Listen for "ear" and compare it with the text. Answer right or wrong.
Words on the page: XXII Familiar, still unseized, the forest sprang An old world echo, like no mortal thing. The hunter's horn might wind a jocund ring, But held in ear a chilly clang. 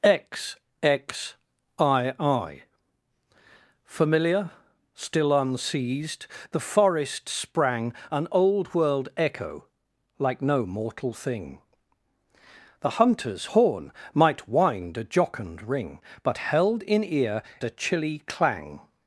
right